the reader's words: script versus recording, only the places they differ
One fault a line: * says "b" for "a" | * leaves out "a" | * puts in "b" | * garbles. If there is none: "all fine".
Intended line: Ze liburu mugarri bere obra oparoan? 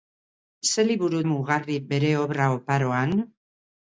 all fine